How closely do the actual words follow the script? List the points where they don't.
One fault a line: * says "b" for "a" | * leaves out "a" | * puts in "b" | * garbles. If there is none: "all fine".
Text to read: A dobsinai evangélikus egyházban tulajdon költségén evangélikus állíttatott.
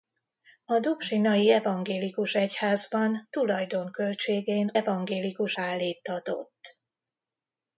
all fine